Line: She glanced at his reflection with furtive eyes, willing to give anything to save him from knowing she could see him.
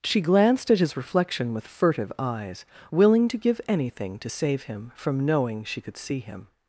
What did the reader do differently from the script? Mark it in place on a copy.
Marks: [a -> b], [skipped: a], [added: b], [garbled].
She glanced at his reflection with furtive eyes, willing to give anything to save him from knowing she could see him.